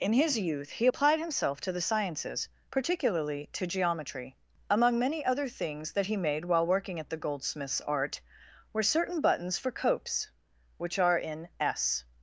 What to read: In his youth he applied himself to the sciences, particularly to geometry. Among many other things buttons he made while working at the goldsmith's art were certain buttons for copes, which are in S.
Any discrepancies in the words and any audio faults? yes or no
yes